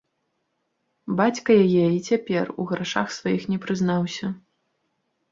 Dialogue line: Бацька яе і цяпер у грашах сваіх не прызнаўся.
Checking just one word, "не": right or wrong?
right